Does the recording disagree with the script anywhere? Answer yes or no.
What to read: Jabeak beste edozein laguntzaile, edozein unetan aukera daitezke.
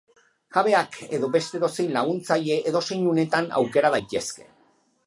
yes